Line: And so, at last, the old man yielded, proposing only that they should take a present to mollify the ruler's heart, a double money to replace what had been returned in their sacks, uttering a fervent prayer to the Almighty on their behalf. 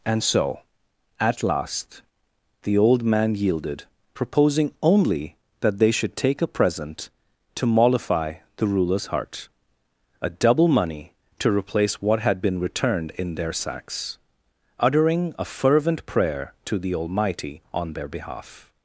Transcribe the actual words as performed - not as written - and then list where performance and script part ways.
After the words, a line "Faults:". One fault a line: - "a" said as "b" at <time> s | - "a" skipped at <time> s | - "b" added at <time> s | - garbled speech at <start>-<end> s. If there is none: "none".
And so, at last, the old man yielded, proposing only that they should take a present to mollify the ruler's heart, a double money to replace what had been returned in their sacks, uttering a fervent prayer to the Almighty on their behalf.
Faults:
none